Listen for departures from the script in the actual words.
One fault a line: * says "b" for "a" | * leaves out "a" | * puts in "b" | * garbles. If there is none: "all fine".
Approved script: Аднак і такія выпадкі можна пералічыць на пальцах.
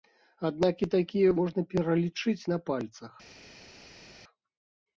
* leaves out "выпадкі"